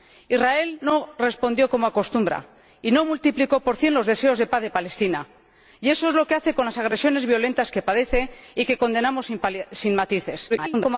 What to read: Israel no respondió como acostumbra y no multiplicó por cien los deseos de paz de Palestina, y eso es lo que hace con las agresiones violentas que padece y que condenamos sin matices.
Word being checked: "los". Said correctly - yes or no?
yes